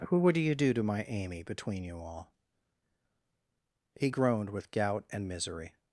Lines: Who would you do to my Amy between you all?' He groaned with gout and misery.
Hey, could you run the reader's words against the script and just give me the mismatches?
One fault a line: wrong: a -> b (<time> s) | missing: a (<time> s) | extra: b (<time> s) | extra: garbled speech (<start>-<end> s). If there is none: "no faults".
no faults